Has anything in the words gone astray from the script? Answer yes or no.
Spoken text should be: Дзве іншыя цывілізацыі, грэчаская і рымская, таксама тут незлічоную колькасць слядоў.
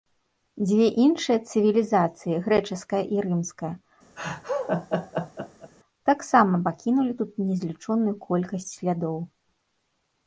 yes